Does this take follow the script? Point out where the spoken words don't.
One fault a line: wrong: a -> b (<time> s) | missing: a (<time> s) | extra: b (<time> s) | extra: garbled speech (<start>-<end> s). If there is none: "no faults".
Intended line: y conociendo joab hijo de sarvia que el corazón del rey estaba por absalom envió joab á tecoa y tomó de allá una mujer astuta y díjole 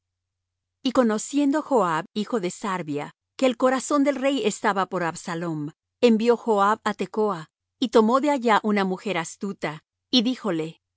no faults